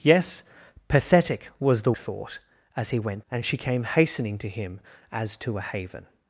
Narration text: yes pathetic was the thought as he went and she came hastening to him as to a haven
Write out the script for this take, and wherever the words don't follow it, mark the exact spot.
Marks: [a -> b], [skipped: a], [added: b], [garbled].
yes pathetic was the thought as he went and she came hastening to him as to a haven